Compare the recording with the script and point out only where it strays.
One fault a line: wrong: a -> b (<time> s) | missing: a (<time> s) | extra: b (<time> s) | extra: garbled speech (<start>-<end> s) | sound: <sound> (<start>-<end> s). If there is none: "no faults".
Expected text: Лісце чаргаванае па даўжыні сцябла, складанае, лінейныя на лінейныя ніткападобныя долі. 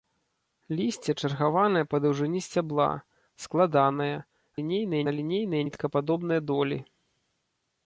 no faults